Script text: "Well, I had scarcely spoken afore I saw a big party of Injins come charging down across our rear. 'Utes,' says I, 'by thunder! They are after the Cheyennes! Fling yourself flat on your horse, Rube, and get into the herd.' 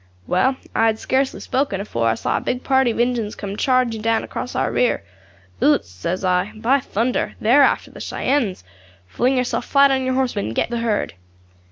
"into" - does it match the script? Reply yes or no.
no